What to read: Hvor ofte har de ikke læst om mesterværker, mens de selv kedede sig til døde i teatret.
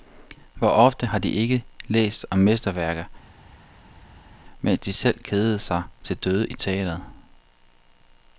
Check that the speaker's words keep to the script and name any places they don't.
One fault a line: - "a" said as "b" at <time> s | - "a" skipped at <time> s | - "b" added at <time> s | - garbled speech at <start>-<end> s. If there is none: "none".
none